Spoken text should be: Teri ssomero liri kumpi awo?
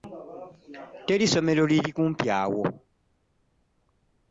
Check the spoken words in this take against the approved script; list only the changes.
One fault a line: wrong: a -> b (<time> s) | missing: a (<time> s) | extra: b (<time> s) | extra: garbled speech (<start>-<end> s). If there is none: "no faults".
no faults